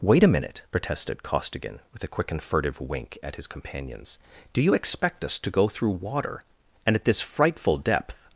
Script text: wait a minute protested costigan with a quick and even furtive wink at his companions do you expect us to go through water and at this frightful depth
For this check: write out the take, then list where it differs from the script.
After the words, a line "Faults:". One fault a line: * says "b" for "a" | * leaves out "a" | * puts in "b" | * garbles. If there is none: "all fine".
wait a minute protested costigan with a quick and furtive wink at his companions do you expect us to go through water and at this frightful depth
Faults:
* leaves out "even"